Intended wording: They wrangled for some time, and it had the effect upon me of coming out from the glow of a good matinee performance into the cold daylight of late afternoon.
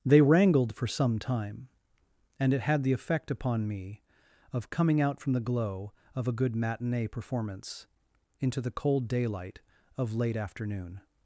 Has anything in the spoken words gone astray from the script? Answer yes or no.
no